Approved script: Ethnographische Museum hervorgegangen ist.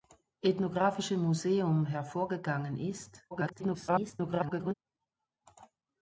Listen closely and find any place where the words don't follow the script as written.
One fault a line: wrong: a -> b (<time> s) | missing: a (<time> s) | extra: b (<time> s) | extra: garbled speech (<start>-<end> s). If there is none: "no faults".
extra: garbled speech (3.3-4.7 s)